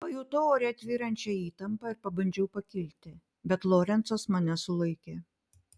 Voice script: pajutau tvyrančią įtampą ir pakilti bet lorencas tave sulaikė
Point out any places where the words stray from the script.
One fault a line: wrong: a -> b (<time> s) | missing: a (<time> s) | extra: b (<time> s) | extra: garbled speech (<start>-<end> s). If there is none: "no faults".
extra: ore (0.5 s)
extra: pabandžiau (2.1 s)
wrong: tave -> mane (4.4 s)